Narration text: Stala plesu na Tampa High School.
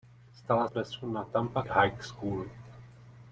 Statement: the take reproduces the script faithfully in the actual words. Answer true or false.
true